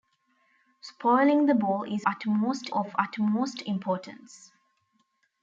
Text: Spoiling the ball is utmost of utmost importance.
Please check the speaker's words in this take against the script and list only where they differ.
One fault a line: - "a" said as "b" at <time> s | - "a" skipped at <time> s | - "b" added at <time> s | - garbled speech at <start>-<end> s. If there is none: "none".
none